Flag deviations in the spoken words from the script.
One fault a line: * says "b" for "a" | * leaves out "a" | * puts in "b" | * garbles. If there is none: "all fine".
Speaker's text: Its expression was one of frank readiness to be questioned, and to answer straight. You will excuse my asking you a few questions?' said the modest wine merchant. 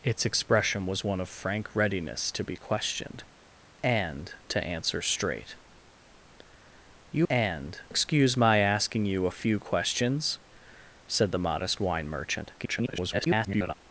* says "and" for "will"
* garbles